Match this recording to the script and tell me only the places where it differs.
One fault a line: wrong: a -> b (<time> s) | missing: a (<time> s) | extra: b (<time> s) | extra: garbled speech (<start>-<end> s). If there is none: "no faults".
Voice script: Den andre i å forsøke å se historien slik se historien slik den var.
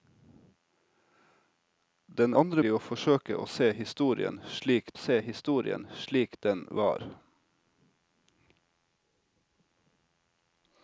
no faults